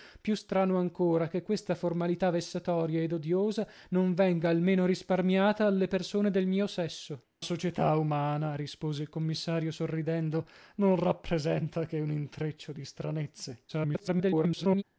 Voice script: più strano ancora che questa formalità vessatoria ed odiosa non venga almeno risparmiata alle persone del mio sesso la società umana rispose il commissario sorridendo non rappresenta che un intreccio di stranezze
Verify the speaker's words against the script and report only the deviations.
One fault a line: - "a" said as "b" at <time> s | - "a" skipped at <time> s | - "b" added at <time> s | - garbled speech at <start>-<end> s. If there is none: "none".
- "la" skipped at 7.2 s
- garbled speech at 13.7-14.8 s